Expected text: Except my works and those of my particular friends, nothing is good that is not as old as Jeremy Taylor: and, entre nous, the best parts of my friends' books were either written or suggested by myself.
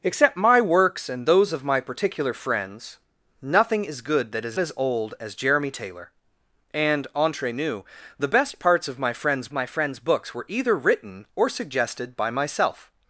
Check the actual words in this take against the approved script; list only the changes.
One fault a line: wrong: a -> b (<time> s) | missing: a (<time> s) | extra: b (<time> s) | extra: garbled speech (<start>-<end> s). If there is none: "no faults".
missing: not (4.6 s)
extra: my friends (9.5 s)